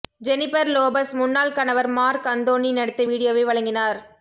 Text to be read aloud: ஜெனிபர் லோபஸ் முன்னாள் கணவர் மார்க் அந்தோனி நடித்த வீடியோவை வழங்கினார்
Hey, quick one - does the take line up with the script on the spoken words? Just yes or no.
yes